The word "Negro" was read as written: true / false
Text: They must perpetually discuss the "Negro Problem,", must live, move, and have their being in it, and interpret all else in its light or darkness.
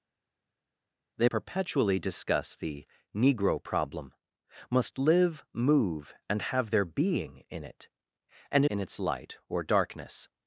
true